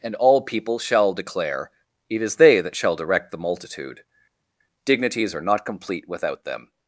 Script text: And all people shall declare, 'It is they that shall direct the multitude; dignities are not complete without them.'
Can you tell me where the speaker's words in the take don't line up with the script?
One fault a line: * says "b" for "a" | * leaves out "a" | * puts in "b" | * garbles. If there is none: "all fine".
all fine